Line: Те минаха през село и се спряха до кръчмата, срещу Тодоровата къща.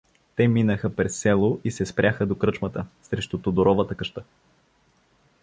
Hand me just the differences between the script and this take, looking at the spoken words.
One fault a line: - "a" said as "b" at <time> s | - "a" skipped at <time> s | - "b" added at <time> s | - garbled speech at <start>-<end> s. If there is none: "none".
none